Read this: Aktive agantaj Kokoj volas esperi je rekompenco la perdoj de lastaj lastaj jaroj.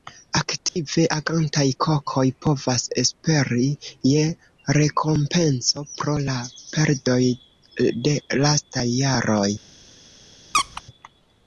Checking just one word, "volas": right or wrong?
wrong